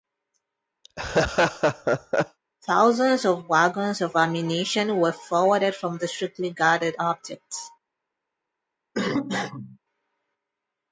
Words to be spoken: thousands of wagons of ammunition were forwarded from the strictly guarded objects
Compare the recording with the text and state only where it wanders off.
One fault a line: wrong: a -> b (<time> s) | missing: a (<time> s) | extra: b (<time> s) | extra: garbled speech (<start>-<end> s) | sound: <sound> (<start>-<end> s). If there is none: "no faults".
sound: laugh (0.8-2.4 s)
sound: cough (8.9-9.8 s)